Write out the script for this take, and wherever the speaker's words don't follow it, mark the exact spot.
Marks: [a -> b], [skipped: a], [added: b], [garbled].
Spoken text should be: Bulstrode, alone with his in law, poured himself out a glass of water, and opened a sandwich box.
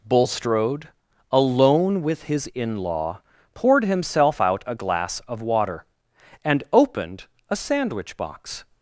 Bulstrode, alone with his in law, poured himself out a glass of water, and opened a sandwich box.